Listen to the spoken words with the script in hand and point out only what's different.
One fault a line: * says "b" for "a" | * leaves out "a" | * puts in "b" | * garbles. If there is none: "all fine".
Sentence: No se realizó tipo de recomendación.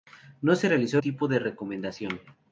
all fine